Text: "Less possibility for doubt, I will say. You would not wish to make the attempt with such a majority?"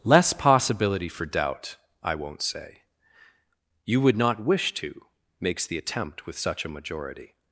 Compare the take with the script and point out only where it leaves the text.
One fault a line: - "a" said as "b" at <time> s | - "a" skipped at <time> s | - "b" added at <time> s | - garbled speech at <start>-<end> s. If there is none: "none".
- "will" said as "won't" at 2.1 s
- "make" said as "makes" at 5.4 s